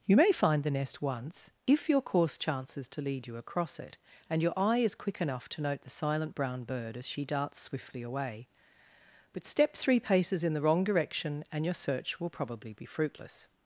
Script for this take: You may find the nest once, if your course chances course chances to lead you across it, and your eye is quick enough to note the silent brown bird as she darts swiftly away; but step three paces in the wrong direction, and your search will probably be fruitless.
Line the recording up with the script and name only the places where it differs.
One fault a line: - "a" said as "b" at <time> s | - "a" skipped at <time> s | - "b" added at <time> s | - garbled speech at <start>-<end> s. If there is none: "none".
- "course chances" skipped at 2.9 s